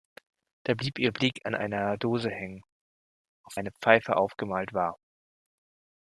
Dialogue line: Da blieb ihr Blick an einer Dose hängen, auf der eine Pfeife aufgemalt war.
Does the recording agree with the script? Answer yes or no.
no